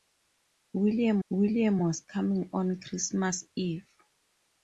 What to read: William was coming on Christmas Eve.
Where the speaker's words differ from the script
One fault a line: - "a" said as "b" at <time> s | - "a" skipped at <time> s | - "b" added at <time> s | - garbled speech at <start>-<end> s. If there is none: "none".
- "william" added at 1.3 s